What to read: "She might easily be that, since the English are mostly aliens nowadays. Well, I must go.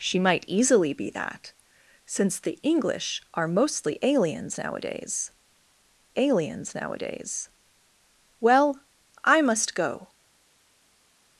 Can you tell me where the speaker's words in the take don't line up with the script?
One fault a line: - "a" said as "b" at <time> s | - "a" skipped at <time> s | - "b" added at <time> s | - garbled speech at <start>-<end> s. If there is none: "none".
- "aliens nowadays" added at 6.2 s